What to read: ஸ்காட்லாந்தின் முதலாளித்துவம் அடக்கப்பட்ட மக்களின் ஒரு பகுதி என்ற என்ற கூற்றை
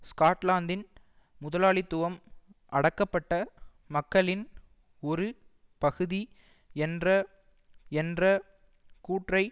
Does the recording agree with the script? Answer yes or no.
yes